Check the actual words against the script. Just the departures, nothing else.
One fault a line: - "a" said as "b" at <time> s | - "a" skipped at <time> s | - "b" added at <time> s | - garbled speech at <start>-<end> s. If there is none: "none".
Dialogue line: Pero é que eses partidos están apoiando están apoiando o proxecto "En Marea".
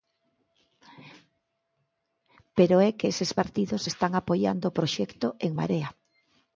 - "están apoiando" skipped at 4.7 s